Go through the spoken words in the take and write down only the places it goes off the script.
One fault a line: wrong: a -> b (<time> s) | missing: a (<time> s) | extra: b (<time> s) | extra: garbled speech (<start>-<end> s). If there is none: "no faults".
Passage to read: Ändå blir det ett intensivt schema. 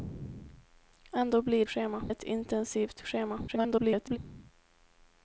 wrong: det -> schema (1.6 s)
extra: garbled speech (3.5-4.2 s)